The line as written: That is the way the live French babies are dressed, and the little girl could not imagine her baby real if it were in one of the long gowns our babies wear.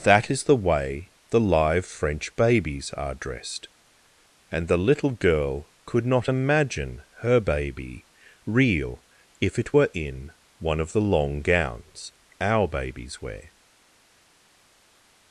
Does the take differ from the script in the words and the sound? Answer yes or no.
no